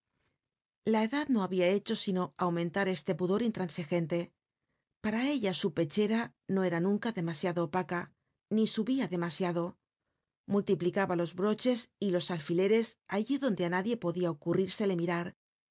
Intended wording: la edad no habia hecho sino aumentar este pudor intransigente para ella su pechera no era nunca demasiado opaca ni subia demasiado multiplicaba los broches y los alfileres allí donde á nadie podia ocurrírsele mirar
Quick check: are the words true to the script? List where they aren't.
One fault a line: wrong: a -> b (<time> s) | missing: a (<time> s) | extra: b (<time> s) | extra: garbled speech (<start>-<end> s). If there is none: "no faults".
no faults